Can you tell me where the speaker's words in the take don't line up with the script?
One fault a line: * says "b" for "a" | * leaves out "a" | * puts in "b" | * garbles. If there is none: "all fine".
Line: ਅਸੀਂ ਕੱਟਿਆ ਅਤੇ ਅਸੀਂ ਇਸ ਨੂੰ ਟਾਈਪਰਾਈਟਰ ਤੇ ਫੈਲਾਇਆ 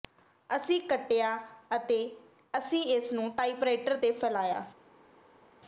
all fine